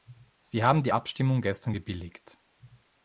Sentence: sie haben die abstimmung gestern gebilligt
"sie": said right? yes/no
yes